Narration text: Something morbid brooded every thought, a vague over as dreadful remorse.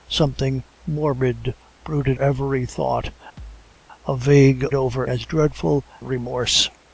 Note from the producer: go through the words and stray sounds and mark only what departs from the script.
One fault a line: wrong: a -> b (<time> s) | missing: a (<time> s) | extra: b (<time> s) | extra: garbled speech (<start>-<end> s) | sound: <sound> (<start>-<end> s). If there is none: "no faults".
sound: thud (3.4-3.8 s)